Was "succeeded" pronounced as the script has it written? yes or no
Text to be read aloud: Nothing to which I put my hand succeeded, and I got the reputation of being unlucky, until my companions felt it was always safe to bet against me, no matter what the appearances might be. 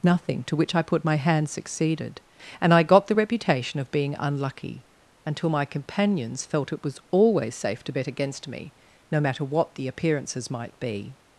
yes